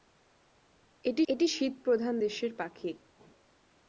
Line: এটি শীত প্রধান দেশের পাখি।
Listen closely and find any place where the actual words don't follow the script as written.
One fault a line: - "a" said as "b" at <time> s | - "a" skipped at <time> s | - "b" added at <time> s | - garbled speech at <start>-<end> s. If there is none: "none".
- "এটি" added at 1.3 s